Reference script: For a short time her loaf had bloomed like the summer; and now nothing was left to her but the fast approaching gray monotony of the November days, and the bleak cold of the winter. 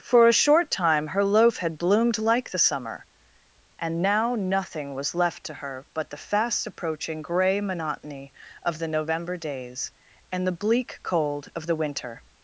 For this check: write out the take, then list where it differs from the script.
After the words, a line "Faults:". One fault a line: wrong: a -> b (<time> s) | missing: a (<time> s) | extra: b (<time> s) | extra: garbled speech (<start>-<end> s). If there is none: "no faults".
For a short time her loaf had bloomed like the summer; and now nothing was left to her but the fast approaching gray monotony of the November days, and the bleak cold of the winter.
Faults:
no faults